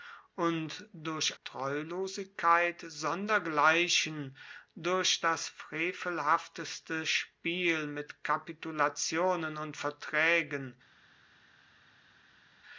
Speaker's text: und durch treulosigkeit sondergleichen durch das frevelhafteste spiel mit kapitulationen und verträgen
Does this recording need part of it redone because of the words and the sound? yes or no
no